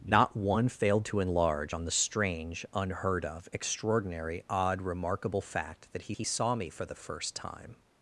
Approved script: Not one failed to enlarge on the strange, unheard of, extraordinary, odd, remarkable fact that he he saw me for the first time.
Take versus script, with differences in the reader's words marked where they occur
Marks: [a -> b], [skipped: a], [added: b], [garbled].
Not one failed to enlarge on the strange, unheard of, extraordinary, odd, remarkable fact that he he saw me for the first time.